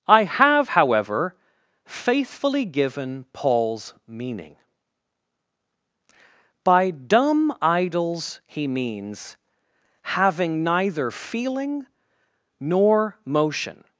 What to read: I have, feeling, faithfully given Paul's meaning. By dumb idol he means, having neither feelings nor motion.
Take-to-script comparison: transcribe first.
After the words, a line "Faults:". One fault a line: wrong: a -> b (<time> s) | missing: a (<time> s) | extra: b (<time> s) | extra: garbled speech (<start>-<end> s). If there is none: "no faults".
I have, however, faithfully given Paul's meaning. By dumb idols he means, having neither feeling nor motion.
Faults:
wrong: feeling -> however (0.7 s)
wrong: idol -> idols (7.6 s)
wrong: feelings -> feeling (11.1 s)